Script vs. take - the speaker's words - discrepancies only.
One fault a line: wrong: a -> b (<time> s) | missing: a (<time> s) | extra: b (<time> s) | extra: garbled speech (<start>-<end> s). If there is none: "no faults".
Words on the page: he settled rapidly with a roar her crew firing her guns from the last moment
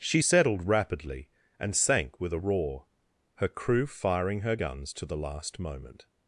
wrong: he -> she (0.0 s)
extra: and sank (1.6 s)
wrong: from -> to (4.9 s)